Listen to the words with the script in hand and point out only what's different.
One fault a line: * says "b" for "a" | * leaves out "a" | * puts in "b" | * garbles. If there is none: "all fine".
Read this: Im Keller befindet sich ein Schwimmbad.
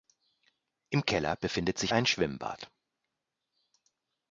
all fine